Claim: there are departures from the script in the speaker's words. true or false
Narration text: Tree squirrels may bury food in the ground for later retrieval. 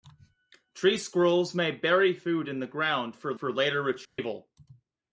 true